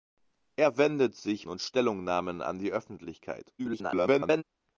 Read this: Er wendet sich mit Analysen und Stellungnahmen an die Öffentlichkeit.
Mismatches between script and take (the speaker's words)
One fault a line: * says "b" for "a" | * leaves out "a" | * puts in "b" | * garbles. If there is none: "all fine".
* leaves out "mit Analysen"
* garbles